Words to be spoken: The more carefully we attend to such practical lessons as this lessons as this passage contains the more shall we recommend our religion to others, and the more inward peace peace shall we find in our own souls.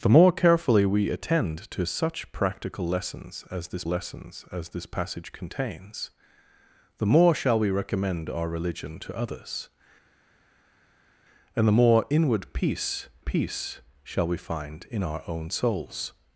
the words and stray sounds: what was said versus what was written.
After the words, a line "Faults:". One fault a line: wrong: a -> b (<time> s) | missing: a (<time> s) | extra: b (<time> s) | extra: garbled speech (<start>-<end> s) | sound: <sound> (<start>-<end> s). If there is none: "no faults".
The more carefully we attend to such practical lessons as this lessons as this passage contains the more shall we recommend our religion to others, and the more inward peace peace shall we find in our own souls.
Faults:
no faults